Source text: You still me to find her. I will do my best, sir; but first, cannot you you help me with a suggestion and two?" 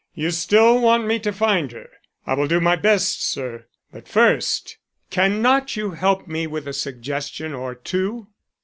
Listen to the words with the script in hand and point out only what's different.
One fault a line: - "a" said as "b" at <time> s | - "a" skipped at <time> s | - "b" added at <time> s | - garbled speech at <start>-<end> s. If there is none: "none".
- "want" added at 0.8 s
- "you" skipped at 5.9 s
- "and" said as "or" at 7.5 s